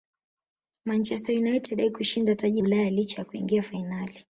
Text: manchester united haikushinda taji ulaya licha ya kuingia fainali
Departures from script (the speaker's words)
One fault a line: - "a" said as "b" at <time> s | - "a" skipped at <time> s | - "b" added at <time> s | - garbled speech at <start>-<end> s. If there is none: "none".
none